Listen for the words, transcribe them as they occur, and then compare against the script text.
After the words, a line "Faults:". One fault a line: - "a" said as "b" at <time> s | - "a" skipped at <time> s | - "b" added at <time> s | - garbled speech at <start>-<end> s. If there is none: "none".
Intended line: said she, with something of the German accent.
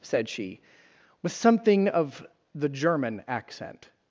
said she, with something of the German accent.
Faults:
none